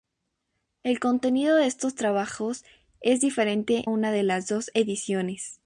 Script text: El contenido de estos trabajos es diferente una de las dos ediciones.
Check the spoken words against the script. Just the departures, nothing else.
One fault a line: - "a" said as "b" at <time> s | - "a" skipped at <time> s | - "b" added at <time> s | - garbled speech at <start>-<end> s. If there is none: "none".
none